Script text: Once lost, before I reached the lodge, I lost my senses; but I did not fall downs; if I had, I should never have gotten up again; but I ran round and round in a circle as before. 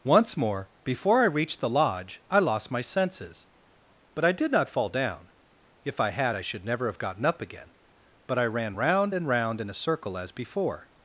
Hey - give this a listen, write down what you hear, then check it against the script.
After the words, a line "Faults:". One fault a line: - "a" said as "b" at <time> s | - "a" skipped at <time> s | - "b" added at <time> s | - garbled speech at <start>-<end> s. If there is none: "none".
Once more, before I reached the lodge, I lost my senses; but I did not fall down; if I had, I should never have gotten up again; but I ran round and round in a circle as before.
Faults:
- "lost" said as "more" at 0.3 s
- "downs" said as "down" at 4.9 s